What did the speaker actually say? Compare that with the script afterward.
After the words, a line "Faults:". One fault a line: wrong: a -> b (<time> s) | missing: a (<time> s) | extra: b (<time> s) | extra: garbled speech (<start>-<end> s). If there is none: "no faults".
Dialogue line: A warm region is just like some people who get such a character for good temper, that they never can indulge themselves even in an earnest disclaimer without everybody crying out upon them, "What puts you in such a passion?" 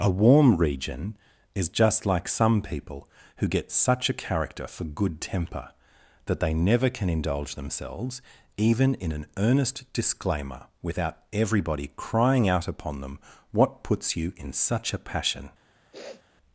A warm region is just like some people who get such a character for good temper, that they never can indulge themselves even in an earnest disclaimer without everybody crying out upon them, "What puts you in such a passion?"
Faults:
no faults